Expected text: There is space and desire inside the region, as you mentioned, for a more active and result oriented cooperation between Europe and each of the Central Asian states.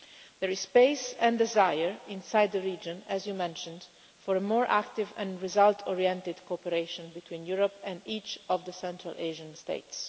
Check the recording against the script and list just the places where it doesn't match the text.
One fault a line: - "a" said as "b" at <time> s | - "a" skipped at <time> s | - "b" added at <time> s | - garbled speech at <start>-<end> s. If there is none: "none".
none